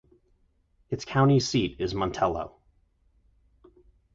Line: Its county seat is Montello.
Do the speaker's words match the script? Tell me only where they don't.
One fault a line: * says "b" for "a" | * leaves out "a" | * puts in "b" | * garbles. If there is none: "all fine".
all fine